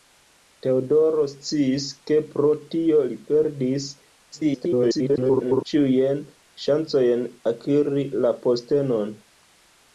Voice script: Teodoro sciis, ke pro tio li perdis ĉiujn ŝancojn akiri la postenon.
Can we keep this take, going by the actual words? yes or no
no